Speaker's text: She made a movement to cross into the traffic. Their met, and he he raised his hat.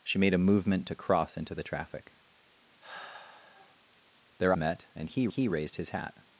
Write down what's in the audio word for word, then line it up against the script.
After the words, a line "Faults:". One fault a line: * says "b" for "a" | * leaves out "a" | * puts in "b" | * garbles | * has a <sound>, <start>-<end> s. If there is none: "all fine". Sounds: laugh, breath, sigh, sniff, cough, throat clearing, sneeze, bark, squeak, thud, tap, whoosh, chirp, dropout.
She made a movement to cross into the traffic. Their met, and he he raised his hat.
Faults:
* has a sigh, 2.8-3.8 s